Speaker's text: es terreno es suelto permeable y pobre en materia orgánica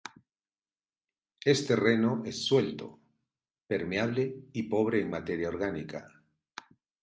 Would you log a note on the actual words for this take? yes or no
no